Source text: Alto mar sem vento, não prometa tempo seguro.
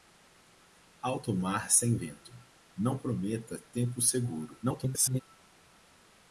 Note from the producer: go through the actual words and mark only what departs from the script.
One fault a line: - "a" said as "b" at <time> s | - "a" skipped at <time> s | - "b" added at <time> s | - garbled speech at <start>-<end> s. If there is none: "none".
- garbled speech at 4.6-5.2 s